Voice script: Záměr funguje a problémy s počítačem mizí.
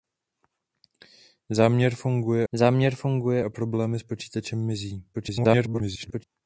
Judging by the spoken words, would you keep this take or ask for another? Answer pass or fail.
fail